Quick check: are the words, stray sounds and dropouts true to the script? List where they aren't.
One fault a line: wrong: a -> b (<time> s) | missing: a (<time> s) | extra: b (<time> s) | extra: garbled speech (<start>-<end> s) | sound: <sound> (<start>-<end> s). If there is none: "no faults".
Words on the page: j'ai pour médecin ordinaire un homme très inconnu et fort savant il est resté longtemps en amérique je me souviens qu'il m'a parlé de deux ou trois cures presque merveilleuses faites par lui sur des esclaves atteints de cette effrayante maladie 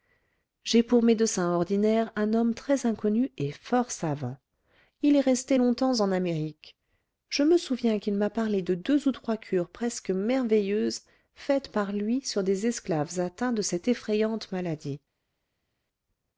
no faults